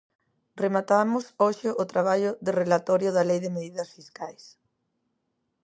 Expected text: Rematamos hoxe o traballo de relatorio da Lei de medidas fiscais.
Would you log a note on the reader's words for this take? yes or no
no